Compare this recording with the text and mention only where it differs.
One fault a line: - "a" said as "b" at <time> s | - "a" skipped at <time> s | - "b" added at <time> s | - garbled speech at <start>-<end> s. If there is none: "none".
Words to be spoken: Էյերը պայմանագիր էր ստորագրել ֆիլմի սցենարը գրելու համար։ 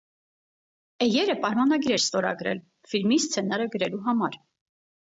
none